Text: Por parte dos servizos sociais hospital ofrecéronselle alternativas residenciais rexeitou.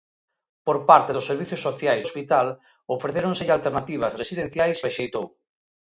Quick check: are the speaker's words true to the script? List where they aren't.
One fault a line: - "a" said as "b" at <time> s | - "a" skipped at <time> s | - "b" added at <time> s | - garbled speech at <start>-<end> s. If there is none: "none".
none